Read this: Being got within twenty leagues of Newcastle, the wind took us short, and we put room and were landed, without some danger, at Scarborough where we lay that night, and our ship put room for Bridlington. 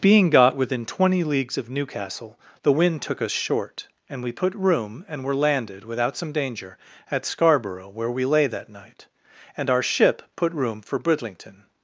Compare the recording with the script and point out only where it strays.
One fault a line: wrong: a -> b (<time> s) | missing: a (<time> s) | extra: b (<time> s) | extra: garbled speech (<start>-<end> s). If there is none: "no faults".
no faults